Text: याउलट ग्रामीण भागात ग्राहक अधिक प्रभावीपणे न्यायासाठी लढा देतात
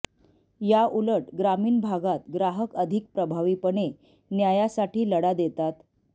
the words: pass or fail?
pass